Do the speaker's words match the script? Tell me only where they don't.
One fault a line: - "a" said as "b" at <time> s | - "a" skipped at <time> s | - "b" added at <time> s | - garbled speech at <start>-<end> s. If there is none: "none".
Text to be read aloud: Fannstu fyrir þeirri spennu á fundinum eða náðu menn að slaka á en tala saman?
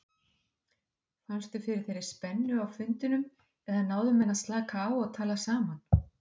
- "en" said as "og" at 5.0 s